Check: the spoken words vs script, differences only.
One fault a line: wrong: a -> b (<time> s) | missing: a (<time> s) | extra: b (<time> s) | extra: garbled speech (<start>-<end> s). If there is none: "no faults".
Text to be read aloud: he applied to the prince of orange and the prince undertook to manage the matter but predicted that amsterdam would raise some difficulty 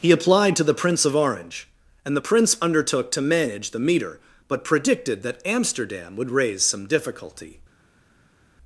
wrong: matter -> meter (3.8 s)